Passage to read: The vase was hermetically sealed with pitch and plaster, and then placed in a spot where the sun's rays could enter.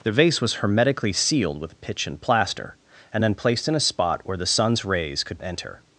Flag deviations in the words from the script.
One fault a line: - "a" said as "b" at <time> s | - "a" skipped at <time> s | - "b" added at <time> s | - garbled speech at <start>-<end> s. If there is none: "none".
none